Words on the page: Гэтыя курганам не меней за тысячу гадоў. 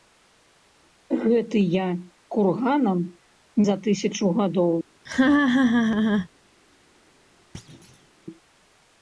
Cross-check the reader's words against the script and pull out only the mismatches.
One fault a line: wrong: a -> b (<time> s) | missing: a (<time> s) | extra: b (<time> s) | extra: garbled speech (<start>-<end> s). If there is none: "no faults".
missing: не меней (3.0 s)